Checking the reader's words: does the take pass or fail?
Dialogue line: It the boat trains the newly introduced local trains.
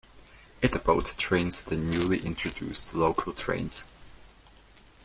pass